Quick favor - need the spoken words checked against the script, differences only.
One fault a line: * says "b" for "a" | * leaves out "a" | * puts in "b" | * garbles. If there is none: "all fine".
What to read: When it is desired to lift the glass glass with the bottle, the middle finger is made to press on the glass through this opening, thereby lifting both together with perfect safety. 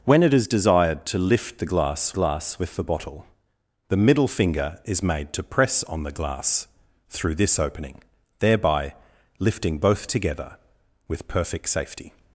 all fine